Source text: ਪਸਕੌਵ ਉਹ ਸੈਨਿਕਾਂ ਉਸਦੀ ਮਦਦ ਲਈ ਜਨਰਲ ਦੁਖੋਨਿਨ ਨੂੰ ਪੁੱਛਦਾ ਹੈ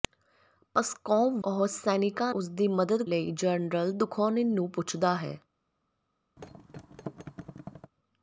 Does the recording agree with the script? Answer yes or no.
yes